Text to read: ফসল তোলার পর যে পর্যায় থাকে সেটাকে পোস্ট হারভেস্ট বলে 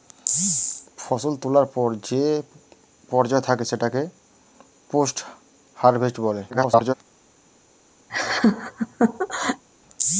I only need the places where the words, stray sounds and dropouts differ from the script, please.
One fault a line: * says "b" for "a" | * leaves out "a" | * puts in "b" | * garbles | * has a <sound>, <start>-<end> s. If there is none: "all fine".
* garbles
* has a laugh, 8.1-9.6 s